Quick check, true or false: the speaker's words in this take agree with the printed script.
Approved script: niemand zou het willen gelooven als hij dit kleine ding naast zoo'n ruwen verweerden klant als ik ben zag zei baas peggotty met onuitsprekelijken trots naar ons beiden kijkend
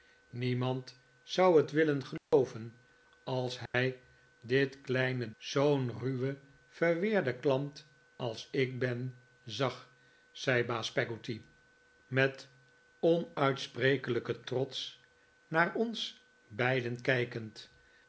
false